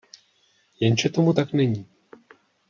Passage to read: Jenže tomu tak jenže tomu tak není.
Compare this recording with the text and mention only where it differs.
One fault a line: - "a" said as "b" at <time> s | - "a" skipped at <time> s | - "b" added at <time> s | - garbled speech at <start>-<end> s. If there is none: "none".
- "jenže tomu tak" skipped at 1.5 s